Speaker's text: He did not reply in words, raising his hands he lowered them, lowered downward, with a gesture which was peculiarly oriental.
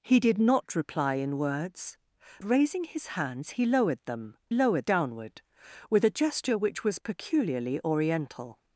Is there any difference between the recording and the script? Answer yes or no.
no